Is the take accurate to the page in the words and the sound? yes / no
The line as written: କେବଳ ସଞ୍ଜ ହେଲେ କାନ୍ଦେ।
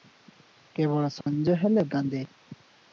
no